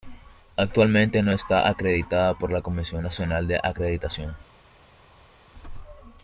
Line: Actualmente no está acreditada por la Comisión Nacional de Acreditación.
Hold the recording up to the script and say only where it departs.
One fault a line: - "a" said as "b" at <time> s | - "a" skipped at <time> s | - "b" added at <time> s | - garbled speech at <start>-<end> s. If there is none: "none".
none